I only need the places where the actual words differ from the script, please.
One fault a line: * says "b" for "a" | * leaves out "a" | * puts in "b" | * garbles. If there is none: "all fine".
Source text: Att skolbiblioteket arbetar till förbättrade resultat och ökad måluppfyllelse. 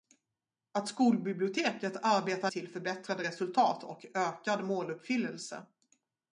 all fine